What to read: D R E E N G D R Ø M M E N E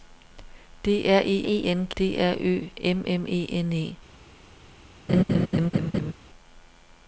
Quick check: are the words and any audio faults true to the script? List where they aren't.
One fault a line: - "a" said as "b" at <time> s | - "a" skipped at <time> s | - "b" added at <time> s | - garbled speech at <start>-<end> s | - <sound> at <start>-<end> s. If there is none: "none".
- laugh at 5.1-6.1 s